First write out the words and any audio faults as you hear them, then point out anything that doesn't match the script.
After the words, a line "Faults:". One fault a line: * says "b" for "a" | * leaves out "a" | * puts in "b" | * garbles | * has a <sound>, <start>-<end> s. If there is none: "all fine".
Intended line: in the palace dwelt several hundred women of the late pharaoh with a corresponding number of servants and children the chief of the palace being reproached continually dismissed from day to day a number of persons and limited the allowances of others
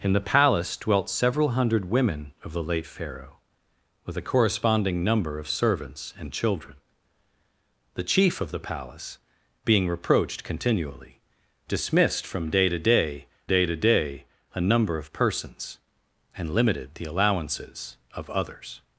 in the palace dwelt several hundred women of the late pharaoh with a corresponding number of servants and children the chief of the palace being reproached continually dismissed from day to day day to day a number of persons and limited the allowances of others
Faults:
* puts in "day to day"